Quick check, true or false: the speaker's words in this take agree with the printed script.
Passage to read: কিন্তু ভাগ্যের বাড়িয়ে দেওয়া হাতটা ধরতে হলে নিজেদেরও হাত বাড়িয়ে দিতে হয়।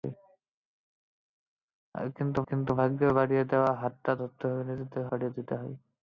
false